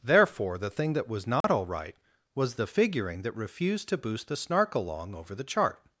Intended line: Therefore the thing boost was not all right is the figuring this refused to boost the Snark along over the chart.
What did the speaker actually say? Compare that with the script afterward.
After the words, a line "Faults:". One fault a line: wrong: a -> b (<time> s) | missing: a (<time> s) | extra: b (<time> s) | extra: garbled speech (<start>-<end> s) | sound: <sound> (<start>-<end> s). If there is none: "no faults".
Therefore the thing that was not all right was the figuring that refused to boost the Snark along over the chart.
Faults:
wrong: boost -> that (0.9 s)
sound: dropout (1.4-1.4 s)
wrong: is -> was (2.3 s)
wrong: this -> that (3.2 s)